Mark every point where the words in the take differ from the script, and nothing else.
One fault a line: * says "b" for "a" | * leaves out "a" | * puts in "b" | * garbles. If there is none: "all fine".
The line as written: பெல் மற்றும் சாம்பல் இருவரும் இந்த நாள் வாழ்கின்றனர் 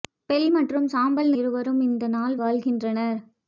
all fine